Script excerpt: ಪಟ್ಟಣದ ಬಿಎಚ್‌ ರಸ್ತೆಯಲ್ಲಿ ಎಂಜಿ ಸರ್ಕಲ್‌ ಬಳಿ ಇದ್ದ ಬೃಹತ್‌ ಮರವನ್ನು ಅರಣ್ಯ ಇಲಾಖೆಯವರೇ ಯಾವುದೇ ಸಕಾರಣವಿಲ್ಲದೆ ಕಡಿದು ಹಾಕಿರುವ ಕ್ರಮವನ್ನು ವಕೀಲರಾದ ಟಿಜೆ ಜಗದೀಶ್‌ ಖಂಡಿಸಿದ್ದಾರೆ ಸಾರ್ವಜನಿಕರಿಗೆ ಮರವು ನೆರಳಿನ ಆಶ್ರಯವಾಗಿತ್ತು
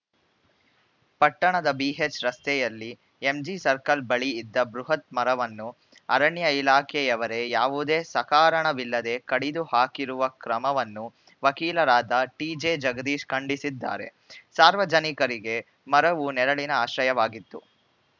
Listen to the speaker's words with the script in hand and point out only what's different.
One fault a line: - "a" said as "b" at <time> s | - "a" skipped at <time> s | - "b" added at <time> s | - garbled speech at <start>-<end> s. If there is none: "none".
none